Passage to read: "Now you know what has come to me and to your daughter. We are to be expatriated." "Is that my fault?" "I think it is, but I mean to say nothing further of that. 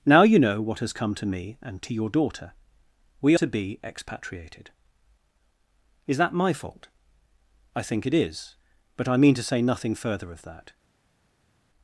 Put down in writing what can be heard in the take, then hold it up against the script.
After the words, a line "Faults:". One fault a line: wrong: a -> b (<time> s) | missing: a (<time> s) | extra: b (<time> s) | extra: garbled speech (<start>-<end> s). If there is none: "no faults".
"Now you know what has come to me and to your daughter. We to be expatriated." "Is that my fault?" "I think it is, but I mean to say nothing further of that.
Faults:
missing: are (3.4 s)